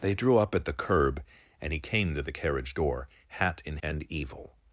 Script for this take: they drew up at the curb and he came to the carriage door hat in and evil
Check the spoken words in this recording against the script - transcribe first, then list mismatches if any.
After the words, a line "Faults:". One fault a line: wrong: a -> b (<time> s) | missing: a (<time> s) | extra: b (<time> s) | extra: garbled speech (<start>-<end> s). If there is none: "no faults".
they drew up at the curb and he came to the carriage door hat in and evil
Faults:
no faults